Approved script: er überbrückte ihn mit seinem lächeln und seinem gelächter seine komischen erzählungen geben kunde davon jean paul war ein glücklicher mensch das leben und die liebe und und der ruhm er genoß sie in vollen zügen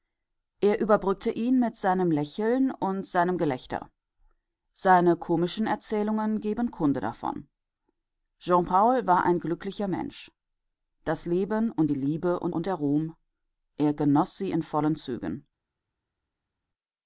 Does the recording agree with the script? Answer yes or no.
yes